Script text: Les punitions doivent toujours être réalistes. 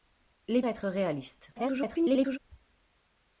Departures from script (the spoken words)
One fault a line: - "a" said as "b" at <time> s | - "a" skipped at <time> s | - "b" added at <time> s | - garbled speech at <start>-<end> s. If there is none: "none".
- "punitions doivent toujours" skipped at 0.6 s
- garbled speech at 1.5-2.4 s